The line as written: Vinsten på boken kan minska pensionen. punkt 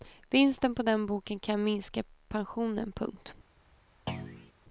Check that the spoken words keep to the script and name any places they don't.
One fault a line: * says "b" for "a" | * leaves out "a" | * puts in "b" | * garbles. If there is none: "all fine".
* puts in "den"